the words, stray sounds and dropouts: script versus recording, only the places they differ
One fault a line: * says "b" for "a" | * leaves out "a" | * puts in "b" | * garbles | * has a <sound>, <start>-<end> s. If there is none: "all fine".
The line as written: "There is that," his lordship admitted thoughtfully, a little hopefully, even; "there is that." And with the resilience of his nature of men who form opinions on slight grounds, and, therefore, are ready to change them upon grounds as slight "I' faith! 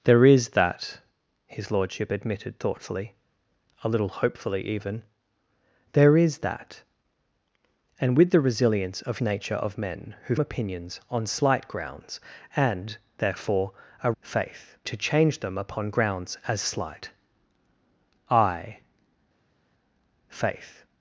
* leaves out "his"
* leaves out "form"
* says "faith" for "ready"